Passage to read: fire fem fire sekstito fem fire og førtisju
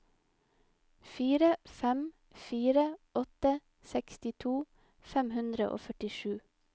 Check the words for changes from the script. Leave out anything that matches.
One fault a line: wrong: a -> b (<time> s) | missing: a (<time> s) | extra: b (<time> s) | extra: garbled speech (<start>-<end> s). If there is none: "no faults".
extra: åtte (3.2 s)
wrong: fire -> hundre (5.4 s)